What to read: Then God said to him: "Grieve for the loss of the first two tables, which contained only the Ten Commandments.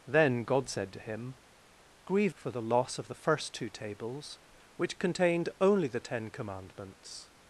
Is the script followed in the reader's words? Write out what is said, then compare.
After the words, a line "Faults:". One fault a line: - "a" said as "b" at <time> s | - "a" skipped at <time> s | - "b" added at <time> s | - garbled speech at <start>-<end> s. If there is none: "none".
Then God said to him: "Grieve for the loss of the first two tables, which contained only the Ten Commandments.
Faults:
none